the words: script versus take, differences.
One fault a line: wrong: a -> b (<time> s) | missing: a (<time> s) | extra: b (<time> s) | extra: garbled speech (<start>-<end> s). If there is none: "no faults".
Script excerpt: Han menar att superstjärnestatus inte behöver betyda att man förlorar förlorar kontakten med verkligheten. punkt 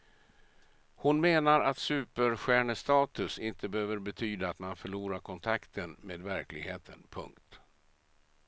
wrong: Han -> Hon (0.9 s)
missing: förlorar (5.2 s)